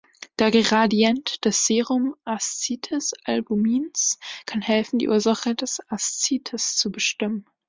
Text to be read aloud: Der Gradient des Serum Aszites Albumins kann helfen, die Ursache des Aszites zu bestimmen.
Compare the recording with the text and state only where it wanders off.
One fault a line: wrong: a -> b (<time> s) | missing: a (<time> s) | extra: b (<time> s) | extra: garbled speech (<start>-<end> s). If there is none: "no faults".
no faults